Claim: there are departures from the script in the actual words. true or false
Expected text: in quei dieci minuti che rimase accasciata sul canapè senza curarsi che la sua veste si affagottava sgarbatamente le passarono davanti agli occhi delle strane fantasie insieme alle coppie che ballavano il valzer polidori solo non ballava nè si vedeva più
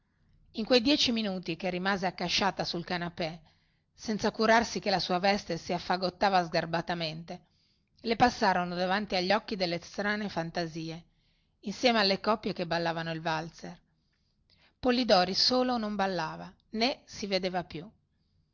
false